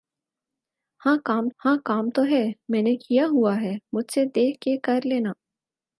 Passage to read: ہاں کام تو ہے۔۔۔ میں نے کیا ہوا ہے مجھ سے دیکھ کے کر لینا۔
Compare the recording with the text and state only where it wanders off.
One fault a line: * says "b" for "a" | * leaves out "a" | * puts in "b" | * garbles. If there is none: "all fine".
* puts in "ہاں کام"